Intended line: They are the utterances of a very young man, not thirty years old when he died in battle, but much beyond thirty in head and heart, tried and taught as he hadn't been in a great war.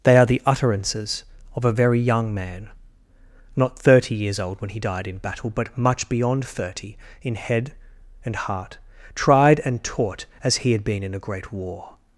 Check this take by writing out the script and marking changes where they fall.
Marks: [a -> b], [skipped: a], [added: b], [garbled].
They are the utterances of a very young man, not thirty years old when he died in battle, but much beyond thirty in head and heart, tried and taught as he [hadn't -> had] been in a great war.